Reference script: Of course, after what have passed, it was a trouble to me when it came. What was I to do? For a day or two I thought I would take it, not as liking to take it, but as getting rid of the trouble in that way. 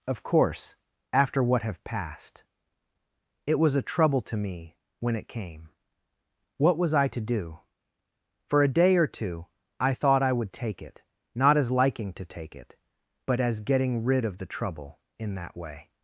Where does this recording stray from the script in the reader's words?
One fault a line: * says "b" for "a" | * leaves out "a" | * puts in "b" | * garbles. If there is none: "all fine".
all fine